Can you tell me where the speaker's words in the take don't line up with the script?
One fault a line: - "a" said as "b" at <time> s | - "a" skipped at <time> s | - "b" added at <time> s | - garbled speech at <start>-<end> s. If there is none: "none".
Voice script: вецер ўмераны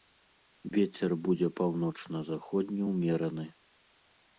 - "будзе паўночна заходні" added at 1.3 s